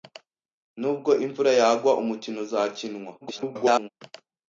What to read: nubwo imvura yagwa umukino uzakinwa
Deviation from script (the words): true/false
true